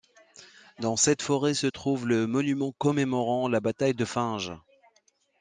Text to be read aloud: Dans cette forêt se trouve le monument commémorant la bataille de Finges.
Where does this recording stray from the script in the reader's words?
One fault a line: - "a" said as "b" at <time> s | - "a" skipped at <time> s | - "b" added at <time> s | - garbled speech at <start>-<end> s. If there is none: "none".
none